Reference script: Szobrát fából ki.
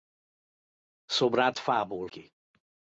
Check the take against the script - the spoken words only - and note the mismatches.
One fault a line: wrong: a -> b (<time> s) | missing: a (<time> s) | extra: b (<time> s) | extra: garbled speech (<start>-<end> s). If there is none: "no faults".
no faults